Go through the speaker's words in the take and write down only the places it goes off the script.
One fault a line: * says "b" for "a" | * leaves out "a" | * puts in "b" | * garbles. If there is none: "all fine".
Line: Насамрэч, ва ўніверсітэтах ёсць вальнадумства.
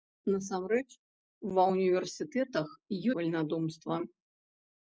* leaves out "ёсць"